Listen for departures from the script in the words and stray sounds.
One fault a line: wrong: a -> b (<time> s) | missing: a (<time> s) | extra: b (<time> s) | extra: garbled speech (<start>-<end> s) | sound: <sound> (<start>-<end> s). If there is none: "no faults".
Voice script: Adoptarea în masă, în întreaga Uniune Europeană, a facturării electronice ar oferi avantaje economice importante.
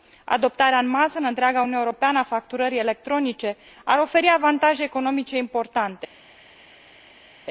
no faults